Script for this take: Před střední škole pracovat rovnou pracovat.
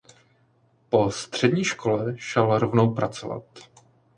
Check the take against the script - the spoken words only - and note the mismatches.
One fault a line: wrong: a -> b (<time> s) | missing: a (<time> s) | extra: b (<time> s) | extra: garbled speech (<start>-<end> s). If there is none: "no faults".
wrong: Před -> Po (0.9 s)
wrong: pracovat -> šel (2.2 s)